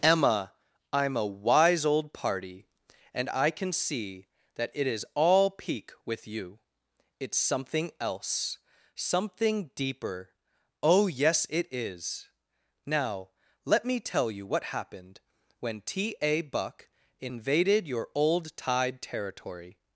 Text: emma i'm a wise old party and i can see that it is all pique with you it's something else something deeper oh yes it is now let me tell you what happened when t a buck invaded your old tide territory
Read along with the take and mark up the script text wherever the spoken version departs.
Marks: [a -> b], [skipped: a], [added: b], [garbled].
emma i'm a wise old party and i can see that it is all pique with you it's something else something deeper oh yes it is now let me tell you what happened when t a buck invaded your old tide territory